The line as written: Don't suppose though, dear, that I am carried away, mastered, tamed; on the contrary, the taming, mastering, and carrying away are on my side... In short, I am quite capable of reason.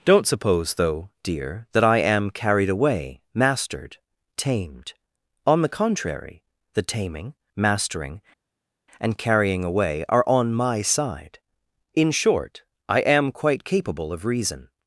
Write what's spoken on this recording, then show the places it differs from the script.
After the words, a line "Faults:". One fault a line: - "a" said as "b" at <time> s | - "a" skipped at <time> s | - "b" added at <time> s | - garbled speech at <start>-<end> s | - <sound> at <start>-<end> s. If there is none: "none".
Don't suppose though, dear, that I am carried away, mastered, tamed; on the contrary, the taming, mastering, and carrying away are on my side... In short, I am quite capable of reason.
Faults:
none